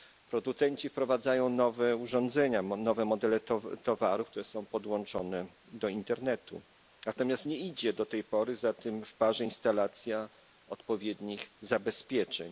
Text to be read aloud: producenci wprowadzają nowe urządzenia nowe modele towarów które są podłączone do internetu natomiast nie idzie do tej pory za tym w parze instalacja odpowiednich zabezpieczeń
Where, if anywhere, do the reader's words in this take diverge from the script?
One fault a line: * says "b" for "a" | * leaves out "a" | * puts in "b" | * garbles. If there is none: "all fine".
all fine